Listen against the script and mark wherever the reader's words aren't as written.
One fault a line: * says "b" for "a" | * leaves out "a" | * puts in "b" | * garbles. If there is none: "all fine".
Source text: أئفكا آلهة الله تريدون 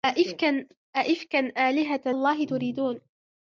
all fine